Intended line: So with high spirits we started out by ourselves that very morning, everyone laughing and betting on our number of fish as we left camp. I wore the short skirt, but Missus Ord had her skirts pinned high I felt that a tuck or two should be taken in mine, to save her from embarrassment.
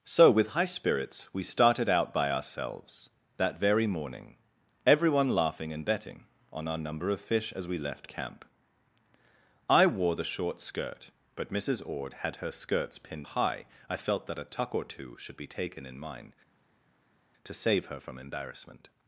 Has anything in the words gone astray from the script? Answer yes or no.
no